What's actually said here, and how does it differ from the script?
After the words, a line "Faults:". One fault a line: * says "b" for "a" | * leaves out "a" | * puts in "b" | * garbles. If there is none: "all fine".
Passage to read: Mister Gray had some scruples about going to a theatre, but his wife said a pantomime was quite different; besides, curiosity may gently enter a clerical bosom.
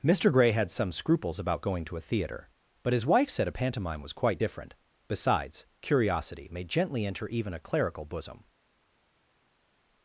Mister Gray had some scruples about going to a theatre, but his wife said a pantomime was quite different; besides, curiosity may gently enter even a clerical bosom.
Faults:
* puts in "even"